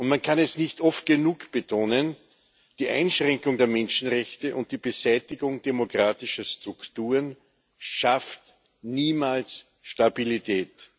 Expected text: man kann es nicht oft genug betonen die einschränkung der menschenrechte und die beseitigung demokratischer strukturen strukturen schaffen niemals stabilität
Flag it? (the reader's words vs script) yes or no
yes